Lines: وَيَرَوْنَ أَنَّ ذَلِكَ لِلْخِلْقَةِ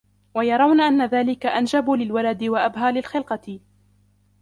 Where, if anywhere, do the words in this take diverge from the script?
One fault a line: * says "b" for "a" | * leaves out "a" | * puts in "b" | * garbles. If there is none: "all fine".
* puts in "أَنْجَبُ لِلْوَلَدِ وَأَبْهَى"